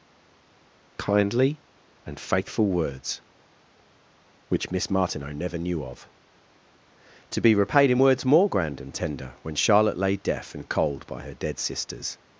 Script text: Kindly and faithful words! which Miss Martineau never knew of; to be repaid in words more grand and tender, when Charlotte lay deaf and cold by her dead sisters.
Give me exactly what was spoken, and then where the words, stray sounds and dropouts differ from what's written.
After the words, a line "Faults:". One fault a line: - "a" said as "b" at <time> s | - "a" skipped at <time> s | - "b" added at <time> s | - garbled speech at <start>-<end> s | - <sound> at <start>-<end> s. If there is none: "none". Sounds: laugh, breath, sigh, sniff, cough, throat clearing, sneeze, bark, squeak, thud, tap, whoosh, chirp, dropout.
Kindly and faithful words! which Miss Martineau never knew of; to be repaid in words more grand and tender, when Charlotte lay deaf and cold by her dead sisters.
Faults:
none